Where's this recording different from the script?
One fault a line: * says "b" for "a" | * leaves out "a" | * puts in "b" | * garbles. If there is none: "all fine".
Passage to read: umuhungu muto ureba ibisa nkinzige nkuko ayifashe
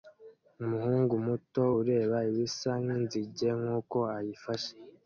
all fine